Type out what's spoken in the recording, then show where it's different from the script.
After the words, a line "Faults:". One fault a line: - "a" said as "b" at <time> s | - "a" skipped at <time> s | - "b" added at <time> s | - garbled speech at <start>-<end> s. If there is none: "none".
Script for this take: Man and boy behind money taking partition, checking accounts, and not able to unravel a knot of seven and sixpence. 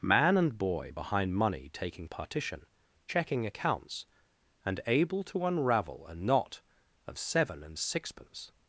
Man and boy behind money taking partition, checking accounts, and able to unravel a knot of seven and sixpence.
Faults:
- "not" skipped at 4.8 s